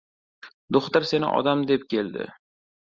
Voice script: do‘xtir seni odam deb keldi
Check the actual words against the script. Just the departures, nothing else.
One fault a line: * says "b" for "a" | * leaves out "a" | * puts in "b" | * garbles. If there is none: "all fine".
all fine